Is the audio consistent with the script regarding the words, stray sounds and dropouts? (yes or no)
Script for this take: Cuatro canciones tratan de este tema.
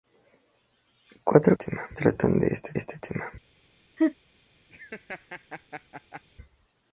no